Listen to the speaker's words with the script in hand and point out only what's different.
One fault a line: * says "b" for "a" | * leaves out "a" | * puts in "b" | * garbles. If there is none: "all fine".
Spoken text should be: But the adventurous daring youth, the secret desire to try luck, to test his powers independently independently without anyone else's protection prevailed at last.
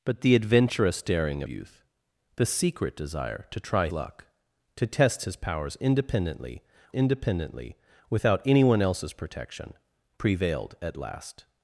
all fine